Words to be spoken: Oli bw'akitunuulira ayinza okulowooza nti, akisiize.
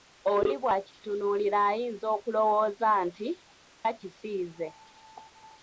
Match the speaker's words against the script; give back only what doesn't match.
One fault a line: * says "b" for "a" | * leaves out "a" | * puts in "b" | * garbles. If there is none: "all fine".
all fine